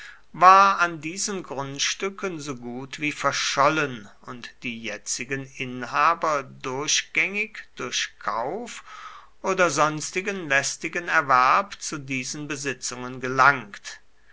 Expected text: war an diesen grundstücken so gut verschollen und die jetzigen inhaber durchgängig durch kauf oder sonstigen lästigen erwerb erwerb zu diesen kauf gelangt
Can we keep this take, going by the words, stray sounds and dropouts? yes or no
no